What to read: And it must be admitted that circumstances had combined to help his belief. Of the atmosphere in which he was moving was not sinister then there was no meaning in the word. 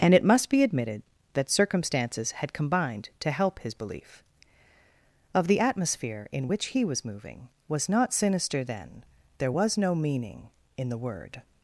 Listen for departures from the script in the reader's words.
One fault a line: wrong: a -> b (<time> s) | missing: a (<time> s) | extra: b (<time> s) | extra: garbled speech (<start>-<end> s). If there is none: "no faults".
no faults